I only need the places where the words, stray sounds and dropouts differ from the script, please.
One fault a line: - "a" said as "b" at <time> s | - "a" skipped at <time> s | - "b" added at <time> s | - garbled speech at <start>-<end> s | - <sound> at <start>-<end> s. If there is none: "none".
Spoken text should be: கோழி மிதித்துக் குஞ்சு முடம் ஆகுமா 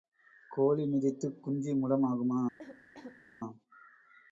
- cough at 2.6-3.2 s